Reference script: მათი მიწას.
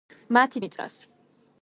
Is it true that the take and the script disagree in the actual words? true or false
false